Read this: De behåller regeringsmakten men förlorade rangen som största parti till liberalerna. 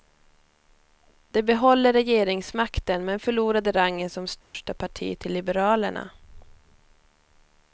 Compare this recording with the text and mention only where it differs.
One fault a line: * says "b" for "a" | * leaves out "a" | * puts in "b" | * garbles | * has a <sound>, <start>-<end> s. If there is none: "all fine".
* has a dropout, 4.4-4.5 s